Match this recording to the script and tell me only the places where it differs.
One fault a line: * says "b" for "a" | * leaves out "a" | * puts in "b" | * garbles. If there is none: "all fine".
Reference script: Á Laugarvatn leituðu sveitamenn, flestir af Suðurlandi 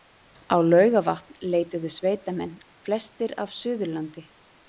all fine